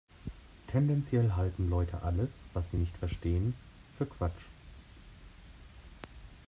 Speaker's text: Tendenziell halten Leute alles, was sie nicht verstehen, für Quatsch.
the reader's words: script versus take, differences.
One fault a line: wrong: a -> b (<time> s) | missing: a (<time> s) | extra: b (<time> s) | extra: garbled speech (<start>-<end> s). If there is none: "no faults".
no faults